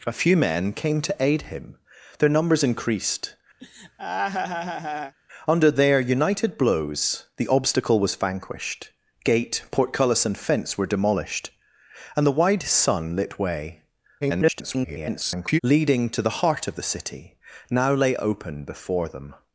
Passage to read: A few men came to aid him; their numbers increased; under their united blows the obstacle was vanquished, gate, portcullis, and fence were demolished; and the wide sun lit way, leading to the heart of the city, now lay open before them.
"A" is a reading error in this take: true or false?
false